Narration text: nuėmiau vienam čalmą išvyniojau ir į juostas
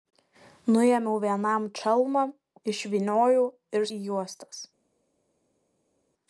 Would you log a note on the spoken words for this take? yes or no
no